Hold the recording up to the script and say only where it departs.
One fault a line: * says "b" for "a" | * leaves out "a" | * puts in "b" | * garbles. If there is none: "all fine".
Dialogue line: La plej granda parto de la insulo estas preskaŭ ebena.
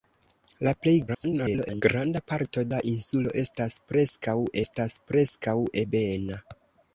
* garbles
* leaves out "de"
* puts in "estas preskaŭ"